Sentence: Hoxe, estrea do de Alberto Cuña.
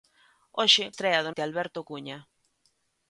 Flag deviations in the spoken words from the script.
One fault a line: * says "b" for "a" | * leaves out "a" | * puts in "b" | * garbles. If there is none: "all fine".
all fine